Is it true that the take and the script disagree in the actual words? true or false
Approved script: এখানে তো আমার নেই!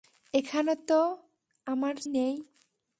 false